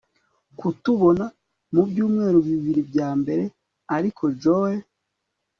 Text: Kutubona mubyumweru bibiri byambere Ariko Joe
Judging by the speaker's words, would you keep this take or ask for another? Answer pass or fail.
pass